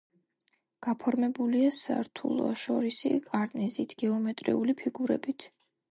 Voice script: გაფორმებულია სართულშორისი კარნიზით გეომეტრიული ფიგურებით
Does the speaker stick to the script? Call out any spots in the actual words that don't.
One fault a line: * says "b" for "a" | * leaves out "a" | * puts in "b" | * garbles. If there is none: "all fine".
all fine